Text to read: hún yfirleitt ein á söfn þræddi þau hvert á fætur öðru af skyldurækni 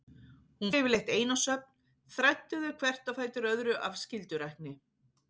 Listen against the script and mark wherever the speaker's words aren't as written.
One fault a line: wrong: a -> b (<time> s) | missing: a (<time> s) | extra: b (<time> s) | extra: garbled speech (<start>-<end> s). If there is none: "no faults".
no faults